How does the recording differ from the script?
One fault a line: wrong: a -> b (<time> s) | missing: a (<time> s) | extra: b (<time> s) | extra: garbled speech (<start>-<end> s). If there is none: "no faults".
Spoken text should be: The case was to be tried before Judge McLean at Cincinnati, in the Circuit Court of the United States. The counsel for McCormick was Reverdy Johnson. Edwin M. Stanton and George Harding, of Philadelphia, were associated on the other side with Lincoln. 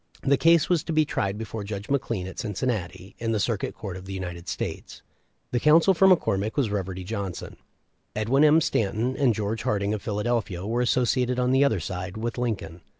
no faults